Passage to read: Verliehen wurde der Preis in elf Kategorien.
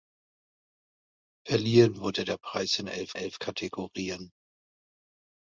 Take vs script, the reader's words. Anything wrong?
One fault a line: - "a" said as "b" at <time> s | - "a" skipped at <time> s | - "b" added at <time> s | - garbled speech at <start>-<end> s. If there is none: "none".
- "elf" added at 3.1 s